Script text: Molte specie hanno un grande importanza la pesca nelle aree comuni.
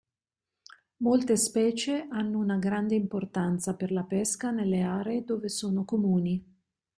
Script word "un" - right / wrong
wrong